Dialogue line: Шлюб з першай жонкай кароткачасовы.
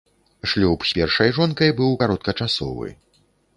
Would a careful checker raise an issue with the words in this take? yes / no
yes